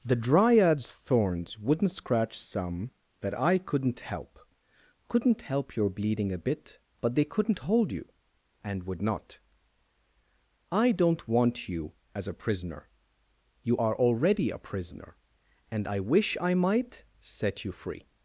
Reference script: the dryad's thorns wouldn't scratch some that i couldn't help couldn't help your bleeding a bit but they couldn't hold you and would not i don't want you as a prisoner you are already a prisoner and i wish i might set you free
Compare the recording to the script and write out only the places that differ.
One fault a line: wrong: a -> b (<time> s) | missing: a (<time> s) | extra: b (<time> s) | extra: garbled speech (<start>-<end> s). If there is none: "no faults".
no faults